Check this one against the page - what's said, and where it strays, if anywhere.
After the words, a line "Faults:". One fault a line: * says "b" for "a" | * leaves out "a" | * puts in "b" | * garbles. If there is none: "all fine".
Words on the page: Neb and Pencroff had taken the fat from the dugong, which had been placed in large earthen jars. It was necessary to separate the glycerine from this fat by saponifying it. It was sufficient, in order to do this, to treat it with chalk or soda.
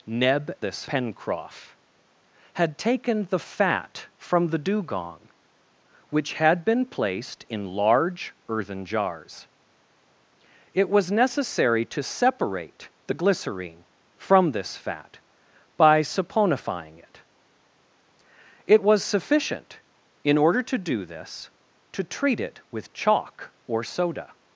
Neb this Pencroff had taken the fat from the dugong, which had been placed in large earthen jars. It was necessary to separate the glycerine from this fat by saponifying it. It was sufficient, in order to do this, to treat it with chalk or soda.
Faults:
* says "this" for "and"